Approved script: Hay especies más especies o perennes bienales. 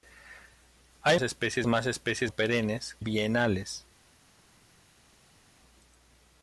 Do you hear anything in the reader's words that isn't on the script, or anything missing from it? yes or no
no